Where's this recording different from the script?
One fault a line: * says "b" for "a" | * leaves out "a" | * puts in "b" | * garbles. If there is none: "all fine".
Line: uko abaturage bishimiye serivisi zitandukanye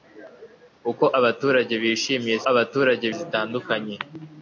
* says "abaturage" for "serivisi"